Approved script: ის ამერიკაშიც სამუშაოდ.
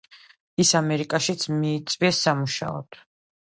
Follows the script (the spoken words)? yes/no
no